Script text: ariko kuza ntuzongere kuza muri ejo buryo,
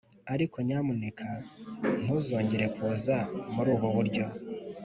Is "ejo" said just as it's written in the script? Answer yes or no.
no